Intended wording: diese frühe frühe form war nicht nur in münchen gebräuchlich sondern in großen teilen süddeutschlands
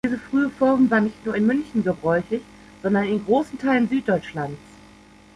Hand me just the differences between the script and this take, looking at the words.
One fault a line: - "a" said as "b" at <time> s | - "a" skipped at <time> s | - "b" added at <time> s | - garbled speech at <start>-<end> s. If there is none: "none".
- "frühe" skipped at 0.5 s